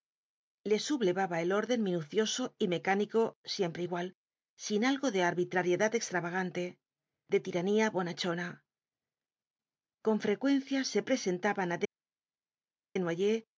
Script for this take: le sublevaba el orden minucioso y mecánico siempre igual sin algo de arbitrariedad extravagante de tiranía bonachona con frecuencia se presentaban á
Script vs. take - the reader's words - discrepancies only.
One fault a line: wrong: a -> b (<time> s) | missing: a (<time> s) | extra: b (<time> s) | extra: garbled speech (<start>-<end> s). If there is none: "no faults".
no faults